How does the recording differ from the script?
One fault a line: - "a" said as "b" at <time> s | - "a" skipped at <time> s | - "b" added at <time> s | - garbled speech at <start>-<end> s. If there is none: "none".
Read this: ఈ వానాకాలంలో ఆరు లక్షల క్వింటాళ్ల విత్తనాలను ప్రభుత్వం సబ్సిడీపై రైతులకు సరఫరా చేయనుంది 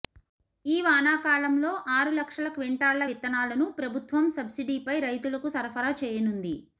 none